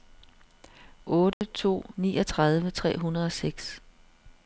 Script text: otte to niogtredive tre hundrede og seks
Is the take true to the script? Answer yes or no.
yes